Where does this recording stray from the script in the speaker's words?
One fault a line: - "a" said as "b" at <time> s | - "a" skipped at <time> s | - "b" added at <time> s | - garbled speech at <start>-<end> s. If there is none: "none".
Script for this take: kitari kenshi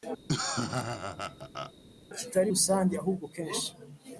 - "rusange ahubwo" added at 2.5 s